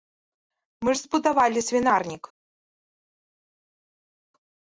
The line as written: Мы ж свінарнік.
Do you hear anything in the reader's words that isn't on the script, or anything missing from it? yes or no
yes